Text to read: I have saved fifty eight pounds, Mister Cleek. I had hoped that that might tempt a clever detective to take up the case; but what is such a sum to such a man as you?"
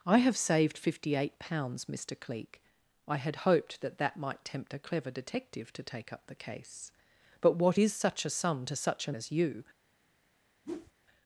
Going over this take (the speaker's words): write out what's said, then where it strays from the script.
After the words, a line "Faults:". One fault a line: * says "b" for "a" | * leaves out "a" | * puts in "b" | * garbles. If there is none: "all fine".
I have saved fifty eight pounds, Mister Cleek. I had hoped that that might tempt a clever detective to take up the case; but what is such a sum to such a as you?"
Faults:
* leaves out "man"